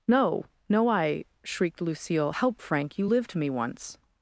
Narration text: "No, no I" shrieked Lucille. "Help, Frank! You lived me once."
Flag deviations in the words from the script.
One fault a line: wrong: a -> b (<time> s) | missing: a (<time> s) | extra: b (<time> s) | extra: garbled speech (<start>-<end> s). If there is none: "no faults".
no faults